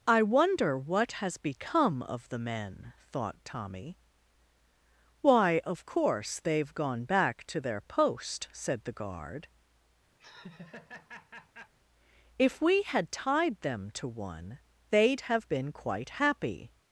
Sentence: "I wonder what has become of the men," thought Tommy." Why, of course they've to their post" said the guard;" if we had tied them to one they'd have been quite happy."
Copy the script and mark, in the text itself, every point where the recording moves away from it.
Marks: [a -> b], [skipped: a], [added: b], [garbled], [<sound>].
"I wonder what has become of the men," thought Tommy." Why, of course they've [added: gone back] to their post" said the guard;" [laugh] if we had tied them to one they'd have been quite happy."